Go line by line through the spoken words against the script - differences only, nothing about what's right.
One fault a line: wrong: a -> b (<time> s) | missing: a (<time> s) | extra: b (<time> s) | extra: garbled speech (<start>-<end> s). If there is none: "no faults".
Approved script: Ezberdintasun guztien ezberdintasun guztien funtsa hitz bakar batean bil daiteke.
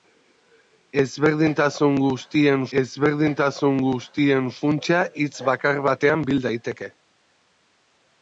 no faults